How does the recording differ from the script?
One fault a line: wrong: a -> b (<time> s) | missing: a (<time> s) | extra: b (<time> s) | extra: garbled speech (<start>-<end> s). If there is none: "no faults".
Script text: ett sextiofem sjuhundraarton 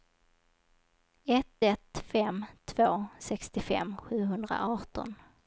extra: ett fem två (1.6 s)